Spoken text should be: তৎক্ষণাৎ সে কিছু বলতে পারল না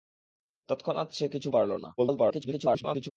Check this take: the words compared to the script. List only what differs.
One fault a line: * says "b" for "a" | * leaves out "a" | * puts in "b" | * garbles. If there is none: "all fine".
* leaves out "বলতে"
* garbles